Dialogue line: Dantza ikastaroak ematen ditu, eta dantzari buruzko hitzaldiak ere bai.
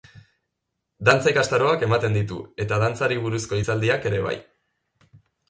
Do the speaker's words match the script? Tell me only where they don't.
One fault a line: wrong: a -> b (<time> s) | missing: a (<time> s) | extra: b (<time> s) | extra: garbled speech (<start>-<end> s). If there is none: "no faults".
no faults